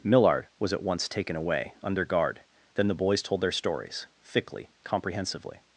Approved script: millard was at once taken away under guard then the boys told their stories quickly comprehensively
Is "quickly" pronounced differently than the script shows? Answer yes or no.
yes